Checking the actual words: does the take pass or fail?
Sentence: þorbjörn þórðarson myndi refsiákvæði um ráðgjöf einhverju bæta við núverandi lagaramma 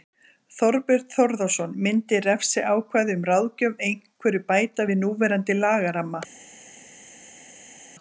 pass